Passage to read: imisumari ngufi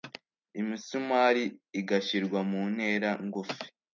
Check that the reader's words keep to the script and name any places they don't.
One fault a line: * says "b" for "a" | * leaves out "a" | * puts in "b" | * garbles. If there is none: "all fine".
* puts in "igashyirwa mu ntera"